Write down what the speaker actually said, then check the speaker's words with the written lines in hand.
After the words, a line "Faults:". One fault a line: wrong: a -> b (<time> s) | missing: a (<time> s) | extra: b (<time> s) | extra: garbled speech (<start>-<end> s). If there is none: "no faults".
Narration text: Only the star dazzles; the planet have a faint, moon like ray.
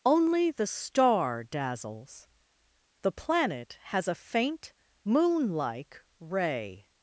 Only the star dazzles; the planet has a faint, moon like ray.
Faults:
wrong: have -> has (3.9 s)